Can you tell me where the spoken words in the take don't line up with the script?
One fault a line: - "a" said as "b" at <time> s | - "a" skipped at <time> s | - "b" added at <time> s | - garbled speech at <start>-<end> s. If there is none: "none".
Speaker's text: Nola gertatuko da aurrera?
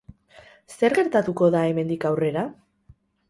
- "Nola" said as "Zer" at 0.8 s
- "hemendik" added at 1.7 s